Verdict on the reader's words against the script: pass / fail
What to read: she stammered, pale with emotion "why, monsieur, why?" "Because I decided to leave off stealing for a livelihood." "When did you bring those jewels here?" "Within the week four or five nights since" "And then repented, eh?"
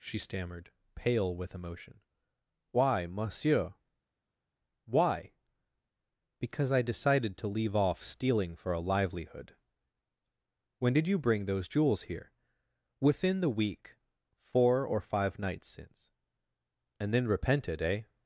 pass